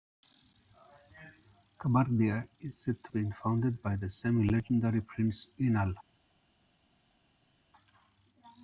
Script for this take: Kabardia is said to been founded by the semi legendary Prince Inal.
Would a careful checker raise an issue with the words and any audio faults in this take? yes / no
no